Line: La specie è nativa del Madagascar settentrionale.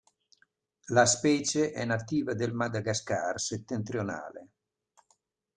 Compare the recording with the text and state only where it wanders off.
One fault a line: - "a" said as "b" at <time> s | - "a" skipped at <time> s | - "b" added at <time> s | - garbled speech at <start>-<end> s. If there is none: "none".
none